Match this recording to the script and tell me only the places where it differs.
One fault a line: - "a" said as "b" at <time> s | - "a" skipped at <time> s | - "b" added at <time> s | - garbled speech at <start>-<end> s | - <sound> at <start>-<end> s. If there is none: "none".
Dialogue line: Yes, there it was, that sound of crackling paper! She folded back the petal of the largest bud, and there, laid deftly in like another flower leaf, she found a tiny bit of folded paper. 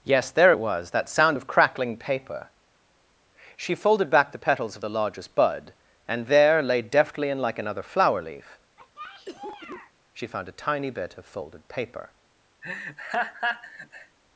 - "petal" said as "petals" at 4.4 s
- cough at 8.8-9.9 s
- laugh at 12.6-14.2 s